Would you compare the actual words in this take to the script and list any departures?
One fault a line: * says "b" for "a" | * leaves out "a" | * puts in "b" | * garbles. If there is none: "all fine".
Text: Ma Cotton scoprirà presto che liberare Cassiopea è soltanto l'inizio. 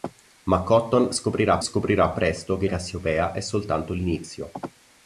* puts in "scoprirà"
* leaves out "liberare"